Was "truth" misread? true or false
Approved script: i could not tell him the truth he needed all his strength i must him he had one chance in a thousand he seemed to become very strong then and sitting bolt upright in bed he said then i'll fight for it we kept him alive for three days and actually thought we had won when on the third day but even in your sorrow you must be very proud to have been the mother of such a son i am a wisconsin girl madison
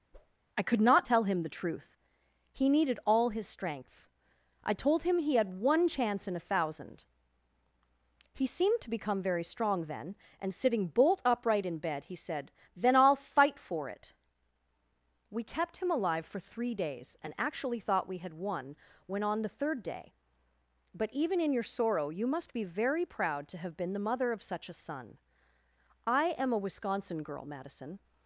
false